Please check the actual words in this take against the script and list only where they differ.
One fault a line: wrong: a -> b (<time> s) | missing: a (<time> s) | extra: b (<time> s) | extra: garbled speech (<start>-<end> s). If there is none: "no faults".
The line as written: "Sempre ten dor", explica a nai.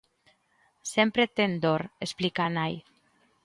no faults